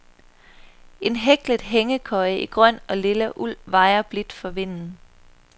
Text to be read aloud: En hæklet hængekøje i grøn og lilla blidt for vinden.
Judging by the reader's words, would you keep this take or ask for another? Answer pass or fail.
fail